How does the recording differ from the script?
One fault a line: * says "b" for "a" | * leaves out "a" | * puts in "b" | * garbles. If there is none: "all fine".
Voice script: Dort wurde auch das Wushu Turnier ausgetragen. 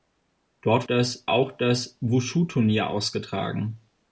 * says "das" for "wurde"